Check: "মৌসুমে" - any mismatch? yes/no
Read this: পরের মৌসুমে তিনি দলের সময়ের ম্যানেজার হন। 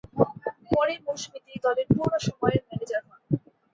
no